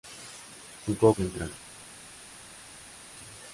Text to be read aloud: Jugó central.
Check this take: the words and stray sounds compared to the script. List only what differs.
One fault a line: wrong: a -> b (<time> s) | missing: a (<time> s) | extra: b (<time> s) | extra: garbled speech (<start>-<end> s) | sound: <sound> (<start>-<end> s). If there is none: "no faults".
no faults